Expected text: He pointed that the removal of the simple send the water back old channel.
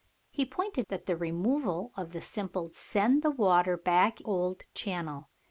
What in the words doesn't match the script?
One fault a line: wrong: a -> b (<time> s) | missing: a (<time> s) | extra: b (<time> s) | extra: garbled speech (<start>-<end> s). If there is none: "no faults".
no faults